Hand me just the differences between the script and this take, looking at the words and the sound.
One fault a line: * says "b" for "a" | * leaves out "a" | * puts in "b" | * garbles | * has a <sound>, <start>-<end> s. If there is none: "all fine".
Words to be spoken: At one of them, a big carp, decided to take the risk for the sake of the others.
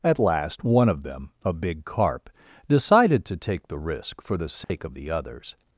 * puts in "last"
* has a dropout, 4.6-4.7 s